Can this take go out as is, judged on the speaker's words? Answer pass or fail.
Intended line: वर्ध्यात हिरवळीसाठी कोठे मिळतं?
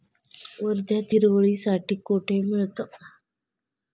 pass